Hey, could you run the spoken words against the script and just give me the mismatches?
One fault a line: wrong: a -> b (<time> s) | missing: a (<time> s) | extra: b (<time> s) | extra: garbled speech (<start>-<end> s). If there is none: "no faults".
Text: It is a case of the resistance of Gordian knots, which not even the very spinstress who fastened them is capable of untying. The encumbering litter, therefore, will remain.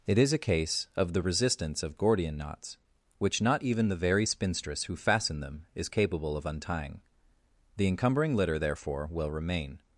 no faults